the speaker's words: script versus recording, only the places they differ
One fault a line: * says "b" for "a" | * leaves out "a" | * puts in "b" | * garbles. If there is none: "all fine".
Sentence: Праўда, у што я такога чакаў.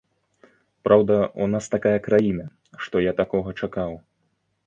* puts in "нас такая краіна"